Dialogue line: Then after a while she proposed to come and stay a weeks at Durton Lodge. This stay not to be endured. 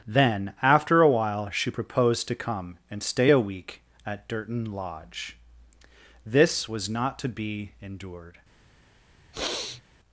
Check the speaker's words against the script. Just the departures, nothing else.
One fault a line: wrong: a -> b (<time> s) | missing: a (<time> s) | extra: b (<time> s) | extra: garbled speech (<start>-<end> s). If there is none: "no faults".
wrong: weeks -> week (3.4 s)
wrong: stay -> was (6.7 s)